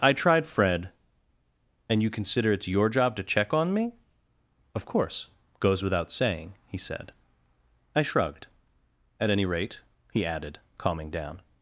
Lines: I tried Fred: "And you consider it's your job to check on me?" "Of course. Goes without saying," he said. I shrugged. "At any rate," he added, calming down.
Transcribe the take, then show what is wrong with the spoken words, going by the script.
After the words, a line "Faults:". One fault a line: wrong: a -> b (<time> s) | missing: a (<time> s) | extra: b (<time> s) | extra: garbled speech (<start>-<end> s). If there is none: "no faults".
I tried Fred: "And you consider it's your job to check on me?" "Of course. Goes without saying," he said. I shrugged. "At any rate," he added, calming down.
Faults:
no faults